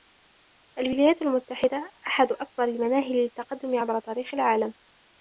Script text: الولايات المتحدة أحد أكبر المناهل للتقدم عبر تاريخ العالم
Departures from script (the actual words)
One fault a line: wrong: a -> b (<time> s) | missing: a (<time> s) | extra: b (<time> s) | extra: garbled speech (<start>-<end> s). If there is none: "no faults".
no faults